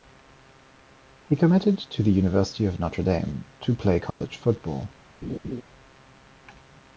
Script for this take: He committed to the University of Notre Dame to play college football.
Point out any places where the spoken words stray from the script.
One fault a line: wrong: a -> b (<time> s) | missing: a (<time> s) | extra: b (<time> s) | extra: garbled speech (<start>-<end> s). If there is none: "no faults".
no faults